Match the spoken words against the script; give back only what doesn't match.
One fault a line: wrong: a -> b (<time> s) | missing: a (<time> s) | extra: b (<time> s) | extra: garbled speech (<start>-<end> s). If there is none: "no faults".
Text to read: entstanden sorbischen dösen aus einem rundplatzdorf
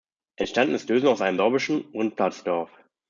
wrong: sorbischen -> ist (0.7 s)
extra: sorbischen (1.4 s)